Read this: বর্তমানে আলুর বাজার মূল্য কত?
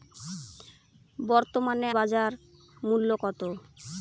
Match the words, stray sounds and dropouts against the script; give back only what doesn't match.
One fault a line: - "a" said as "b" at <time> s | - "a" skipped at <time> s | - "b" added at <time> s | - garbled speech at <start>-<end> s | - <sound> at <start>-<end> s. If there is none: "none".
- "আলুর" skipped at 1.9 s